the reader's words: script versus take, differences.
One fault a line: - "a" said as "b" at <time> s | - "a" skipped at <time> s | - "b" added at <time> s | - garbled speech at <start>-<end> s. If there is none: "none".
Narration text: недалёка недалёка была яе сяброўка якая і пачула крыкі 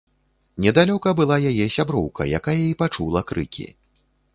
- "недалёка" skipped at 1.1 s